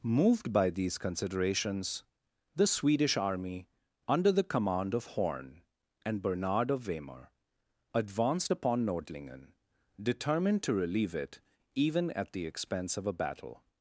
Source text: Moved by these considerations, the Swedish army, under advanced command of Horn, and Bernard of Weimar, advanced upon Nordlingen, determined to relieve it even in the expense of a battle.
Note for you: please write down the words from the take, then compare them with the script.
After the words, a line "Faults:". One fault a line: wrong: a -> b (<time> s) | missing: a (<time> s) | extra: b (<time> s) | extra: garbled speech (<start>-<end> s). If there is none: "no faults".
Moved by these considerations, the Swedish army, under the command of Horn, and Bernard of Weimar, advanced upon Nordlingen, determined to relieve it even at the expense of a battle.
Faults:
wrong: advanced -> the (4.3 s)
wrong: in -> at (12.1 s)